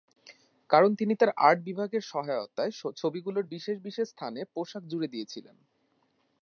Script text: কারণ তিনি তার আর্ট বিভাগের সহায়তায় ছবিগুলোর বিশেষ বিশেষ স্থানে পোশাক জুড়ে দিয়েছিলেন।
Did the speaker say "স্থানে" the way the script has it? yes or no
yes